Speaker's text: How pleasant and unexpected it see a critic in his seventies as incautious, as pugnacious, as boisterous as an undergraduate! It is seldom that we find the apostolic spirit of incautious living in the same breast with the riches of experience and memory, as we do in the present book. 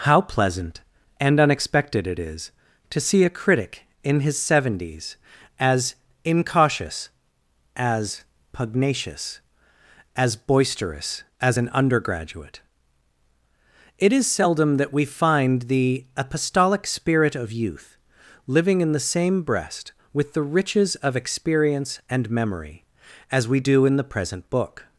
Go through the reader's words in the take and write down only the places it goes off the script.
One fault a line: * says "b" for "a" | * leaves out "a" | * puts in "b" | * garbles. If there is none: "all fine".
* puts in "is to"
* says "youth" for "incautious"